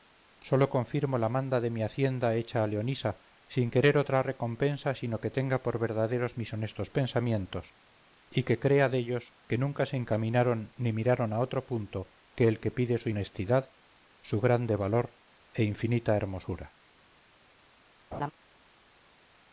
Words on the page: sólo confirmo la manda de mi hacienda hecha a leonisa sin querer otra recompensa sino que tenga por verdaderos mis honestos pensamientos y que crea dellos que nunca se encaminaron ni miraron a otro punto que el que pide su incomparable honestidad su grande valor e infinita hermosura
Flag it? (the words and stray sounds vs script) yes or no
yes